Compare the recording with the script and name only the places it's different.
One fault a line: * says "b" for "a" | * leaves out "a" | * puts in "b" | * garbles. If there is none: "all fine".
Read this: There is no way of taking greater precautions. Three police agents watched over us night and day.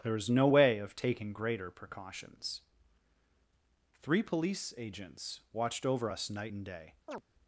all fine